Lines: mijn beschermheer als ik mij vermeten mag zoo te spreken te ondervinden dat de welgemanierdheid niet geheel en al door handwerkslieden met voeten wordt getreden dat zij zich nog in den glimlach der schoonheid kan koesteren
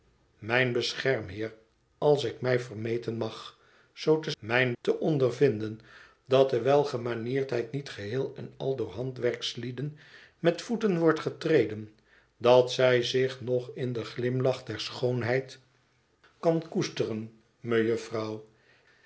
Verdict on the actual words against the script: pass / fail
fail